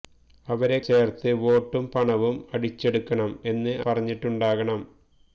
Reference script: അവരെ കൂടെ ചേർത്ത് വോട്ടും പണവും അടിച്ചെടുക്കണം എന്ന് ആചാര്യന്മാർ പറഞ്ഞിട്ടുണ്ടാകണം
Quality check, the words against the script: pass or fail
fail